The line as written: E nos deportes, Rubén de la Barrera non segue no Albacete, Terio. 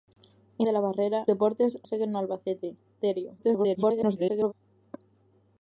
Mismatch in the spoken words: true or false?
true